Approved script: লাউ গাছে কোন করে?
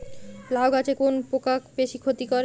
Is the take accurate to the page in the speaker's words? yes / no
no